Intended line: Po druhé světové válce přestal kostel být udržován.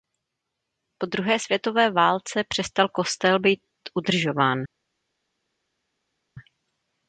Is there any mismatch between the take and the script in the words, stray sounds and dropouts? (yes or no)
no